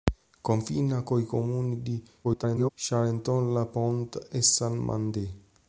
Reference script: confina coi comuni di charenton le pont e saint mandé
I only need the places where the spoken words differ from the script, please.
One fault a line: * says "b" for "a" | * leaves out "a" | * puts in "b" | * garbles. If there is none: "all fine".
* garbles